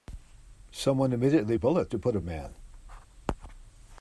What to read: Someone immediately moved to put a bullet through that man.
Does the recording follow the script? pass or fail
fail